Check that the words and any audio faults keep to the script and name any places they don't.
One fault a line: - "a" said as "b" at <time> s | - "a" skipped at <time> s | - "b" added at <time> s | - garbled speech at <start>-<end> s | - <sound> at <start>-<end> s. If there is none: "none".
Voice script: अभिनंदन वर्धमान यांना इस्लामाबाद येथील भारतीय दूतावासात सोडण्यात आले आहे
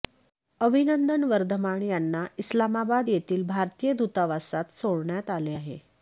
none